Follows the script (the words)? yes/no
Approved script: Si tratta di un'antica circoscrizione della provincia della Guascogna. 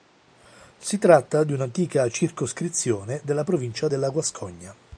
yes